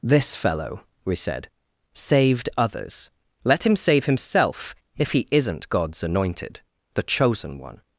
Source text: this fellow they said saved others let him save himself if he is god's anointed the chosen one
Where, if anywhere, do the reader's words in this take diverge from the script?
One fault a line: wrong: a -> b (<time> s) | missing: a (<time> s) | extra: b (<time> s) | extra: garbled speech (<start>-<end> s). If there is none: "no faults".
wrong: they -> we (1.1 s)
wrong: is -> isn't (5.3 s)